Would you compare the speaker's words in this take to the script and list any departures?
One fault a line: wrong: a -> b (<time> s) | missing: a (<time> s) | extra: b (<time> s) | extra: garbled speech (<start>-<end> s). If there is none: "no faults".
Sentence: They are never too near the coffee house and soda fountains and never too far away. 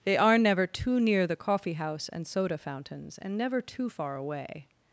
no faults